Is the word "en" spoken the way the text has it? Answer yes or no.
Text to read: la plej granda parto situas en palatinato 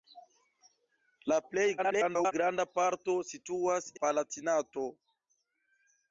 no